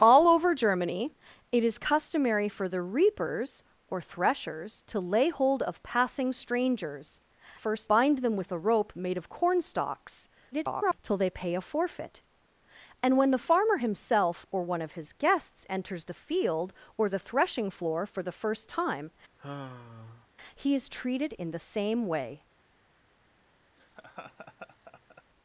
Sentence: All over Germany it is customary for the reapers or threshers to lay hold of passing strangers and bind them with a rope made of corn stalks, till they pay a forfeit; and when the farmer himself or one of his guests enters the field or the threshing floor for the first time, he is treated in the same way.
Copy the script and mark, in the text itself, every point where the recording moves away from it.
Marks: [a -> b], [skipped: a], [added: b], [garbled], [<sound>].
All over Germany it is customary for the reapers or threshers to lay hold of passing strangers [and -> first] bind them with a rope made of corn stalks, [garbled] till they pay a forfeit; and when the farmer himself or one of his guests enters the field or the threshing floor for the first time, [sigh] he is treated in the same way. [laugh]